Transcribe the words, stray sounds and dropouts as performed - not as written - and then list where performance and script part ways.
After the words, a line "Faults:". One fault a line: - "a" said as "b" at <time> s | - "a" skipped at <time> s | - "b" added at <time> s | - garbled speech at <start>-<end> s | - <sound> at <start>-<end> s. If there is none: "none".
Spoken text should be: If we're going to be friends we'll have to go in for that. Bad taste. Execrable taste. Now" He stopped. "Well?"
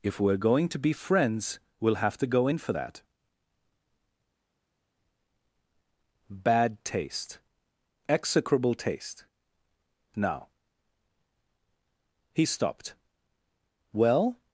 If we're going to be friends we'll have to go in for that. Bad taste. Execrable taste. Now" He stopped. "Well?"
Faults:
none